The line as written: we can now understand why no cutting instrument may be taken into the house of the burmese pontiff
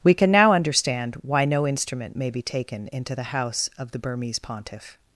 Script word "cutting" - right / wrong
wrong